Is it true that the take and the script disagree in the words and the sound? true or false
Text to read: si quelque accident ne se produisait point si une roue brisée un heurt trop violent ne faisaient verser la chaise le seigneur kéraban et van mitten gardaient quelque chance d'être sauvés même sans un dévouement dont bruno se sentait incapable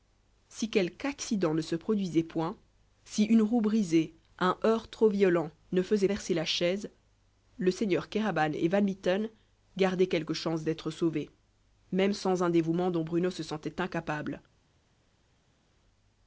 false